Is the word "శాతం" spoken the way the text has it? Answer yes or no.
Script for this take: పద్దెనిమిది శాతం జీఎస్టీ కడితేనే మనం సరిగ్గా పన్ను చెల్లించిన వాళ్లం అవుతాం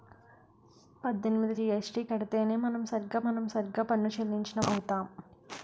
no